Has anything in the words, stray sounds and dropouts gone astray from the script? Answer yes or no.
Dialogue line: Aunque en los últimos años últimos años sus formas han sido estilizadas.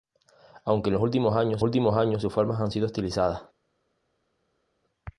no